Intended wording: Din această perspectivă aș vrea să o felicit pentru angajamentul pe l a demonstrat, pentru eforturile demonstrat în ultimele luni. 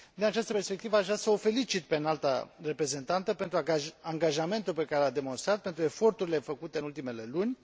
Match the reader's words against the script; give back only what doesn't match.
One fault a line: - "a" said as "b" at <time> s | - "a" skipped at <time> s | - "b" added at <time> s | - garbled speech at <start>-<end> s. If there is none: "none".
- "pe Înalta Reprezentantă" added at 1.8 s
- "care" added at 4.8 s
- "demonstrat" said as "făcute" at 6.4 s